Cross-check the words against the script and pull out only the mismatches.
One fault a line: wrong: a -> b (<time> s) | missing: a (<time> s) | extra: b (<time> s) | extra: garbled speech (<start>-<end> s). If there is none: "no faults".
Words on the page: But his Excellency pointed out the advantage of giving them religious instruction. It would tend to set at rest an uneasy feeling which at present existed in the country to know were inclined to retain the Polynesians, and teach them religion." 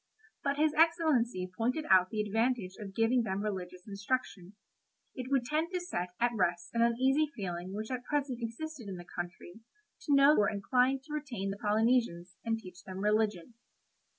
no faults